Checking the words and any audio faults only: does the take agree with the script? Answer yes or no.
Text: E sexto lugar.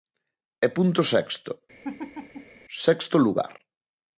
no